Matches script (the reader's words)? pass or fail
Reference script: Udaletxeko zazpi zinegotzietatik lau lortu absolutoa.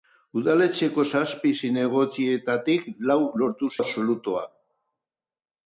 pass